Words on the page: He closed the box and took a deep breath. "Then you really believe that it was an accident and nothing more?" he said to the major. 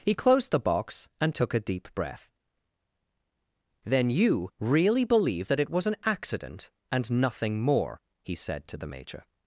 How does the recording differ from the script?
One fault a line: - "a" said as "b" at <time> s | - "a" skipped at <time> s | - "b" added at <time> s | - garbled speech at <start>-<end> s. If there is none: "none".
none